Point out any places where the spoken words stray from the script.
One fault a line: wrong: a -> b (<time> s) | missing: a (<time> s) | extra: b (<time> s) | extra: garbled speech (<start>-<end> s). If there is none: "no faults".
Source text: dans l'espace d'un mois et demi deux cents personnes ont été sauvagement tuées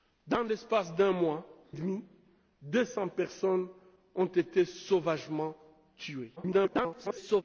missing: et (1.4 s)
extra: garbled speech (6.4-7.4 s)